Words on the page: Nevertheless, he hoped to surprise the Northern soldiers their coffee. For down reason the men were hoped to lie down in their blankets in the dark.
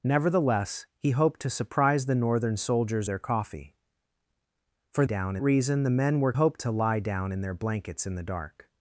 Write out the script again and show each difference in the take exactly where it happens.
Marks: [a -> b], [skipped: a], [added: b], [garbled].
Nevertheless, he hoped to surprise the Northern soldiers their coffee. For down reason the men were hoped to lie down in their blankets in the dark.